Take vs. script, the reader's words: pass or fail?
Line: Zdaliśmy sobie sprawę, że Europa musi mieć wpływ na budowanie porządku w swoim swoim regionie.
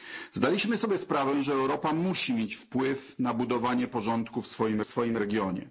pass